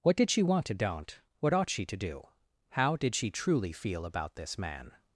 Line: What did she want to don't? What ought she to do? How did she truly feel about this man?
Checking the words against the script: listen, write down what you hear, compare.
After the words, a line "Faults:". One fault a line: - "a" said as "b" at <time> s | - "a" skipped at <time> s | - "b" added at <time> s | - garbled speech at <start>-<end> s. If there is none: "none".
What did she want to don't? What ought she to do? How did she truly feel about this man?
Faults:
none